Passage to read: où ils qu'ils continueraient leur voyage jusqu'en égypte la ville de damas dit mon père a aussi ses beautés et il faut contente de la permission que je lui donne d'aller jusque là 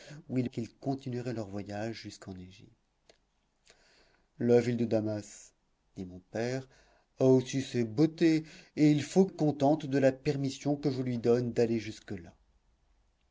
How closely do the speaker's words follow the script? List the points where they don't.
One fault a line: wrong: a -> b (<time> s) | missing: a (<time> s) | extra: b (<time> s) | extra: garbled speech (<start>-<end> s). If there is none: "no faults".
no faults